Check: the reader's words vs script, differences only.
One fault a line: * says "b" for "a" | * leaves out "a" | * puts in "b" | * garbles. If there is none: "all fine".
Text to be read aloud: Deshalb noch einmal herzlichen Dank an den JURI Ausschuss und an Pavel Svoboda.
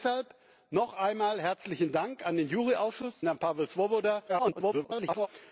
* leaves out "und"
* garbles